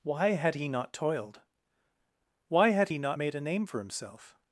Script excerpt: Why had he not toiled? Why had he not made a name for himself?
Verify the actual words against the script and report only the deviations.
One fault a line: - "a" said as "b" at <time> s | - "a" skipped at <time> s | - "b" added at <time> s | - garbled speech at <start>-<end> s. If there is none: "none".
none